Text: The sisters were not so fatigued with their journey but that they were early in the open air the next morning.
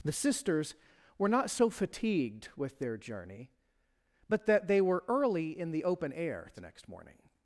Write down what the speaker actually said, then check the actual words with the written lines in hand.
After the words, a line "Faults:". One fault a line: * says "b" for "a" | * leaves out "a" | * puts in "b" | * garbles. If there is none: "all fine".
The sisters were not so fatigued with their journey but that they were early in the open air the next morning.
Faults:
all fine